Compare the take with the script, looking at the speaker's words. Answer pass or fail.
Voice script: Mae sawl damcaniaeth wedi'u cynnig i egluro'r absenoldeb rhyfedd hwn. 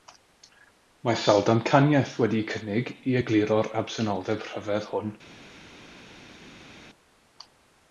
pass